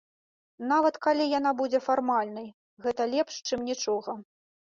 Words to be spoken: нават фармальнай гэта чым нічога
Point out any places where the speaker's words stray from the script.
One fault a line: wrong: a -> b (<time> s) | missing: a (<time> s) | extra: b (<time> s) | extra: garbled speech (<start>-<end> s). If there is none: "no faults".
extra: калі яна будзе (1.1 s)
extra: лепш (3.1 s)